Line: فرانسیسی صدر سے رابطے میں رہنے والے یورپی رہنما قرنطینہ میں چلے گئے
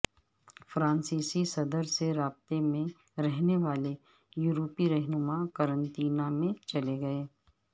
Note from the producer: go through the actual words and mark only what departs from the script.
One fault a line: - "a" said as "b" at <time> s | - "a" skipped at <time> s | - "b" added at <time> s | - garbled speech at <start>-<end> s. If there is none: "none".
none